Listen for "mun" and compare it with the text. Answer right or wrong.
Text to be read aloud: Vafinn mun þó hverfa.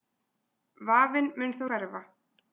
right